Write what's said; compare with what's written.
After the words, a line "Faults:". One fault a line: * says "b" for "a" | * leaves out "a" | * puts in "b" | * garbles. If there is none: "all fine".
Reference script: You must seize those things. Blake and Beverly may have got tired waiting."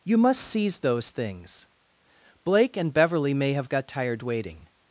You must seize those things. Blake and Beverly may have got tired waiting."
Faults:
all fine